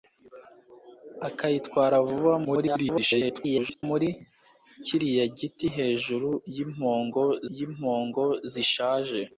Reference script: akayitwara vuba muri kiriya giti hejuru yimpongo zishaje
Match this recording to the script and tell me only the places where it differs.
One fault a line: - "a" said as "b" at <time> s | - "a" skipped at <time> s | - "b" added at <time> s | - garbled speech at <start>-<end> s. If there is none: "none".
- garbled speech at 2.4-3.8 s
- "yimpongo" added at 7.6 s